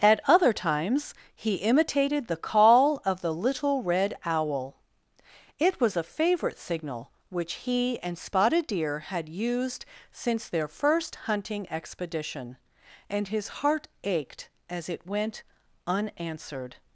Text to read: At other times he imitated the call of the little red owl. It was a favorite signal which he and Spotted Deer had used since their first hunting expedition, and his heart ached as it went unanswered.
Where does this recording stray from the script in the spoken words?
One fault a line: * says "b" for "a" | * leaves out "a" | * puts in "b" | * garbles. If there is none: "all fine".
all fine